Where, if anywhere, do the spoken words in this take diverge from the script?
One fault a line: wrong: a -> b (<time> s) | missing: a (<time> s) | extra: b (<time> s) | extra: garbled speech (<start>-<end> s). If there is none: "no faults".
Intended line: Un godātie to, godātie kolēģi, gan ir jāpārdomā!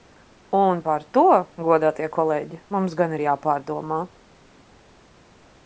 wrong: godātie -> par (0.9 s)
extra: mums (2.7 s)